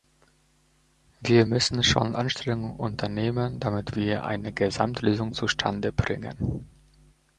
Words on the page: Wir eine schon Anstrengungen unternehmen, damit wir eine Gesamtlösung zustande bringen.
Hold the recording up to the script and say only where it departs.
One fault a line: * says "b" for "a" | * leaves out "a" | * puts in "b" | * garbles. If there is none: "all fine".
* says "müssen" for "eine"